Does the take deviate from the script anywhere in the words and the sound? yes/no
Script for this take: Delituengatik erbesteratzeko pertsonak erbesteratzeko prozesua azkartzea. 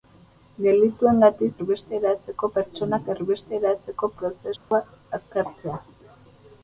yes